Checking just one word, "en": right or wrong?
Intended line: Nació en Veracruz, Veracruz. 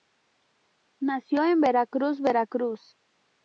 right